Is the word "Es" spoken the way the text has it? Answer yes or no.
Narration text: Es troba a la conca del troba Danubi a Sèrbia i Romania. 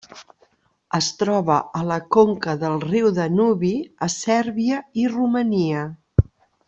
yes